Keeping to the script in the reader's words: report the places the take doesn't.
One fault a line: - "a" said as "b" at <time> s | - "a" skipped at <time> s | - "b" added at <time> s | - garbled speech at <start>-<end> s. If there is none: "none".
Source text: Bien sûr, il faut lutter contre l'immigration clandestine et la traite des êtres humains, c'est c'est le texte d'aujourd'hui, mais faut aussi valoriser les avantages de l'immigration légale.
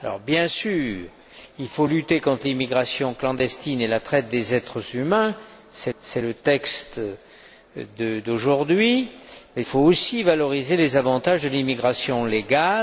none